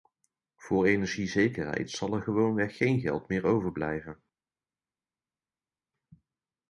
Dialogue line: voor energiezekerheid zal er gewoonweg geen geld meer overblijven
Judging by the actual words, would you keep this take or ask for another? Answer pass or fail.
pass